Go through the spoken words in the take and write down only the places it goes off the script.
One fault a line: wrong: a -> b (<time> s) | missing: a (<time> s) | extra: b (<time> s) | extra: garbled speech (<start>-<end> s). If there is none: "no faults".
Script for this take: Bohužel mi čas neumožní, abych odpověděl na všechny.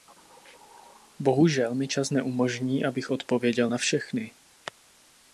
no faults